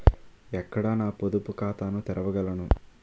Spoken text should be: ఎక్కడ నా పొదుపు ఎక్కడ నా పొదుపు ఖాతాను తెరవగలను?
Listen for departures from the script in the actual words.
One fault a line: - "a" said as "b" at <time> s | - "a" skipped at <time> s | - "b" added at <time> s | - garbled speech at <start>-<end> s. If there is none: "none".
- "ఎక్కడ నా పొదుపు" skipped at 1.5 s